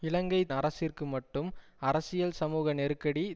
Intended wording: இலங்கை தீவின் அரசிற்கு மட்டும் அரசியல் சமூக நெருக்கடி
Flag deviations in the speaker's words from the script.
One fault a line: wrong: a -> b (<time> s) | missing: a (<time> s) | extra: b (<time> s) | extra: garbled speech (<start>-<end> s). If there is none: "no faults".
missing: தீவின் (0.4 s)